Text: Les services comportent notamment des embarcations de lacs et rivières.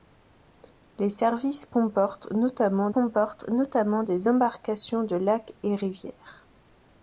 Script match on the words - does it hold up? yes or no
no